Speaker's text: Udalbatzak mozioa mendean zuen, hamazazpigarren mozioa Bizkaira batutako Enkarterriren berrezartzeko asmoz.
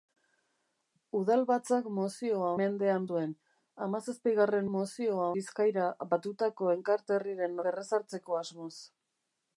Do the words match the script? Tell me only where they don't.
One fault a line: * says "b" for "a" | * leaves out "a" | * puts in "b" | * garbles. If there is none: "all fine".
all fine